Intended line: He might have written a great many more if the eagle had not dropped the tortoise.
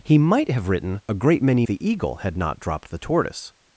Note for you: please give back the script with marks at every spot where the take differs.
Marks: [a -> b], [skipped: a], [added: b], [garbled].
He might have written a great many [skipped: more if] the eagle had not dropped the tortoise.